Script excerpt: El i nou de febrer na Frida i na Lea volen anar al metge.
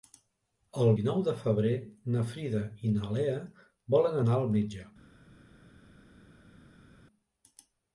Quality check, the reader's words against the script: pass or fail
pass